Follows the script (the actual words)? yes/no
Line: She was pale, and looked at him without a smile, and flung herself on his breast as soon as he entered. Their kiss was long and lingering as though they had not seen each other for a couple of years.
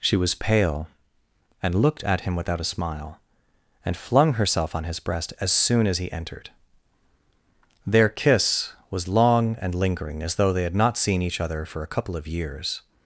yes